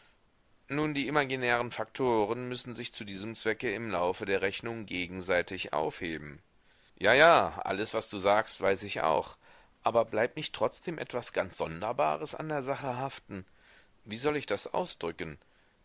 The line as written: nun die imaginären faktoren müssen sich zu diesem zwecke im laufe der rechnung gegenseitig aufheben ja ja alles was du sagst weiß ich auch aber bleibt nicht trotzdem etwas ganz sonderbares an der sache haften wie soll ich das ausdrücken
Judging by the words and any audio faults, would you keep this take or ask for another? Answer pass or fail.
pass